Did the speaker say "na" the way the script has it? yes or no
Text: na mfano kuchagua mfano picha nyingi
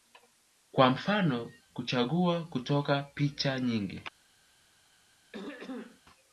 no